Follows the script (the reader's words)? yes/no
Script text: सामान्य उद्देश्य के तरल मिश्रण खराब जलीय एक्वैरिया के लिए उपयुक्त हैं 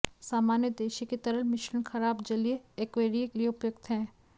no